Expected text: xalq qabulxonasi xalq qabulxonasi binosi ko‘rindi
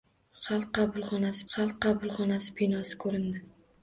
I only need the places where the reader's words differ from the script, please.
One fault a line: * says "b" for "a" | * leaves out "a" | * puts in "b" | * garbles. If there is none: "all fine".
all fine